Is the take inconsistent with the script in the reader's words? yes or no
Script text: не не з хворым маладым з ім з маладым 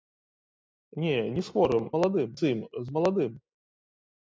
no